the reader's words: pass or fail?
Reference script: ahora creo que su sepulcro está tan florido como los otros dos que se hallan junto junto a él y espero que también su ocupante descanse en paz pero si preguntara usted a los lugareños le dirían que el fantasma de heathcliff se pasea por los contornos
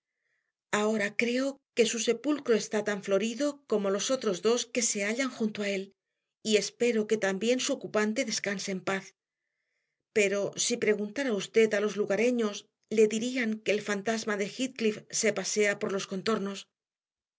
fail